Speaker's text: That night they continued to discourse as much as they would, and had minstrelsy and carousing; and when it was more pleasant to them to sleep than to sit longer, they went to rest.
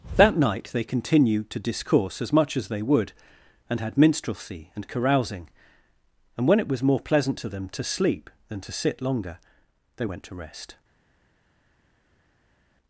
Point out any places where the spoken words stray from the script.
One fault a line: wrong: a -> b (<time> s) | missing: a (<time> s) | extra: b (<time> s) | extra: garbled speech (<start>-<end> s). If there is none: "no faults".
no faults